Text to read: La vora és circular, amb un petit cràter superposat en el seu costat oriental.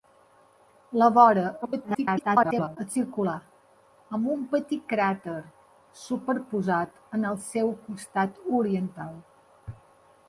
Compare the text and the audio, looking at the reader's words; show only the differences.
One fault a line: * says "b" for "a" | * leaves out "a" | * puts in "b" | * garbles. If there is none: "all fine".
* garbles